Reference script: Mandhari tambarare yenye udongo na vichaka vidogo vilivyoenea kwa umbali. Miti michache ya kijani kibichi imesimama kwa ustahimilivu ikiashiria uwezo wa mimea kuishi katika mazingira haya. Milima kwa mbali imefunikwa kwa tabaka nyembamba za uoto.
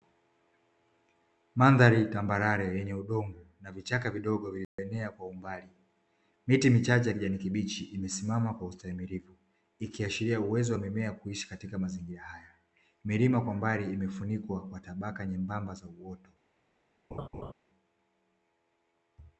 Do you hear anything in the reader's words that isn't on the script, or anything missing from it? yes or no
no